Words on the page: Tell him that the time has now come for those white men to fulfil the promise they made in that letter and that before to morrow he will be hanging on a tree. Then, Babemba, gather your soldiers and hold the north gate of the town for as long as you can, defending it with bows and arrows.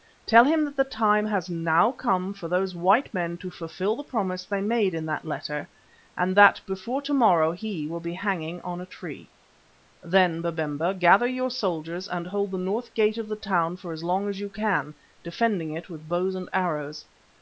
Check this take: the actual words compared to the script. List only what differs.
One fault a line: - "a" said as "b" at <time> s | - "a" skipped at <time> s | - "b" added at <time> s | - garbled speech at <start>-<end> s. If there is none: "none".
none